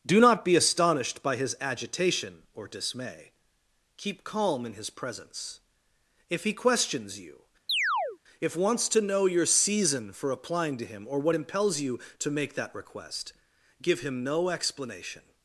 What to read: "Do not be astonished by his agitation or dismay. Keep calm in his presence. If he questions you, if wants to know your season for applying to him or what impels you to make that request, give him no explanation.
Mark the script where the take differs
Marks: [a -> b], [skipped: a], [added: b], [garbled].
"Do not be astonished by his agitation or dismay. Keep calm in his presence. If he questions you, if wants to know your season for applying to him or what impels you to make that request, give him no explanation.